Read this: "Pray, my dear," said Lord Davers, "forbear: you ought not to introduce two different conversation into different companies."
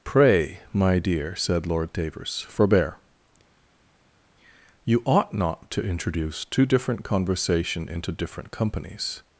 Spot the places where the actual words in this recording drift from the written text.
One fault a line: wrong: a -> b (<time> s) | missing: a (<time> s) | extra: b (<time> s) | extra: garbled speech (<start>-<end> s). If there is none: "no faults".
no faults